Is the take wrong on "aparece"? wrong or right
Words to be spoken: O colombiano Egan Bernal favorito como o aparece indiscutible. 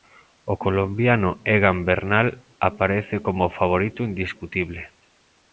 wrong